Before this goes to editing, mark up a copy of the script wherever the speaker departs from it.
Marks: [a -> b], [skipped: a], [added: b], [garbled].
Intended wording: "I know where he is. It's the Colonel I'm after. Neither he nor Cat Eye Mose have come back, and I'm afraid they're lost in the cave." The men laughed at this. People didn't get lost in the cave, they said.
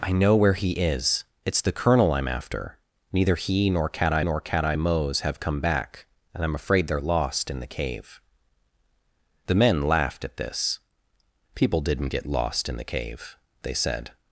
"I know where he is. It's the Colonel I'm after. Neither he nor Cat Eye [added: nor Cat Eye] Mose have come back, and I'm afraid they're lost in the cave." The men laughed at this. People didn't get lost in the cave, they said.